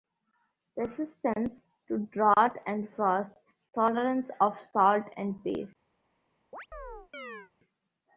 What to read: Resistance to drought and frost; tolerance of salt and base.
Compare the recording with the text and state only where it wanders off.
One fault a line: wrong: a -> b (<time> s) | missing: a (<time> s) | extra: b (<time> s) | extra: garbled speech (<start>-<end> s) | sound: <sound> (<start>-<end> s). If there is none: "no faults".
sound: chirp (6.5-7.5 s)